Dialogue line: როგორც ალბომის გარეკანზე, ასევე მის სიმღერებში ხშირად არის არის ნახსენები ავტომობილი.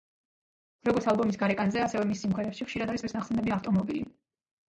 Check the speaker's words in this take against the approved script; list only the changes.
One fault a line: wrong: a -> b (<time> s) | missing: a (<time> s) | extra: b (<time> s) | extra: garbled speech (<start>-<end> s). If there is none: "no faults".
no faults